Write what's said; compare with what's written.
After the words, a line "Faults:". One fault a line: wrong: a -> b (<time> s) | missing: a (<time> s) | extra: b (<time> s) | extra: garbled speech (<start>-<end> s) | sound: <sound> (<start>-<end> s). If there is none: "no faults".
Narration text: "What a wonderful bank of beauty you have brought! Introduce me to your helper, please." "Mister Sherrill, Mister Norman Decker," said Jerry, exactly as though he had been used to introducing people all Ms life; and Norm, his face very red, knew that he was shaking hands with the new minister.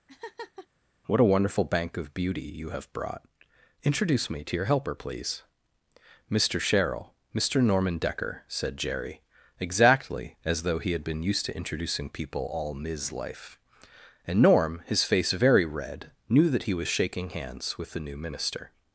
"What a wonderful bank of beauty you have brought! Introduce me to your helper, please." "Mister Sherrill, Mister Norman Decker," said Jerry, exactly as though he had been used to introducing people all Ms life; and Norm, his face very red, knew that he was shaking hands with the new minister.
Faults:
sound: laugh (0.1-0.7 s)